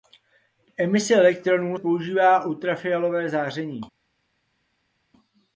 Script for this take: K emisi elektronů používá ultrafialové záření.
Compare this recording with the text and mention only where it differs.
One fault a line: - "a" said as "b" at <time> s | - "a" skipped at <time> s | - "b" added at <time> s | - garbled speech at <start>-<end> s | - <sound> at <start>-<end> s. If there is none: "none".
none